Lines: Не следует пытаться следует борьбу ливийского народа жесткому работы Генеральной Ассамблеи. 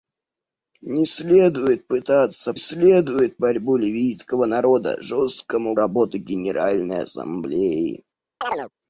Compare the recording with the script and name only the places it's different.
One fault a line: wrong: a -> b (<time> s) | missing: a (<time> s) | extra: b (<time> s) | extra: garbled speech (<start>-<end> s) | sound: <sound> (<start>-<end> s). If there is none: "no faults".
sound: chirp (8.4-8.7 s)